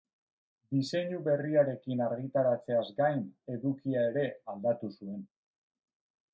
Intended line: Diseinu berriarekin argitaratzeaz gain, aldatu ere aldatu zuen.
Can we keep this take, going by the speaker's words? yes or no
no